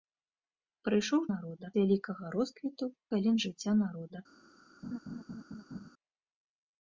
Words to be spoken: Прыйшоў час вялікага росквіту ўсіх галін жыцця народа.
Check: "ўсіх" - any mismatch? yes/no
yes